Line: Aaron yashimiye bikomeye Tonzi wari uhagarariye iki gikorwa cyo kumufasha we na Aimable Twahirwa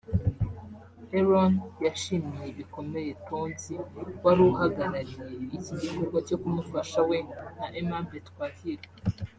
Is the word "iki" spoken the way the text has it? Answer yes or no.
yes